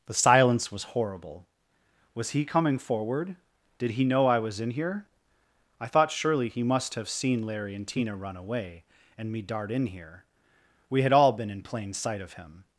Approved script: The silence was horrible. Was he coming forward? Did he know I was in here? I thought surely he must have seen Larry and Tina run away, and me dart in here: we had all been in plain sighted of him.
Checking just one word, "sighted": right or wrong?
wrong